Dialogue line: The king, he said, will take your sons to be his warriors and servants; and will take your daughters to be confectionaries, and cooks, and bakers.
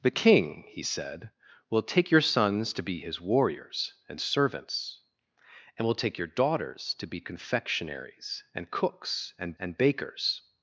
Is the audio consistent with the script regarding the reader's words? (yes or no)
no